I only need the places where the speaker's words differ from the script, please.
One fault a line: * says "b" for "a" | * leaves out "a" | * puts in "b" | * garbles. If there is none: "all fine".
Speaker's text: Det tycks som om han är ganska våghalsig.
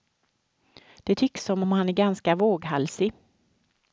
all fine